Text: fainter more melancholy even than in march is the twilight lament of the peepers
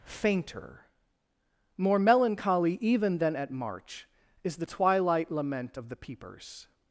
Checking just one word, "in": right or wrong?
wrong